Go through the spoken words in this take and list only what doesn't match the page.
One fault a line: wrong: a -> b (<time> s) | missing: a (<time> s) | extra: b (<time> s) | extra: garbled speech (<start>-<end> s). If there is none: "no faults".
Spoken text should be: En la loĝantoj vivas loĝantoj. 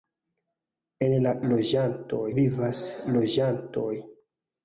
no faults